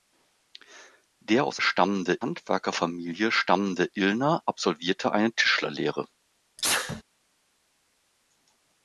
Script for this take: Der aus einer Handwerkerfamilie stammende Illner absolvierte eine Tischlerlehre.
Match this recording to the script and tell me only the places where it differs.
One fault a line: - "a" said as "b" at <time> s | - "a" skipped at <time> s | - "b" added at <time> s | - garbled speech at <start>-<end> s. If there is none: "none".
- "einer" said as "stammende" at 1.6 s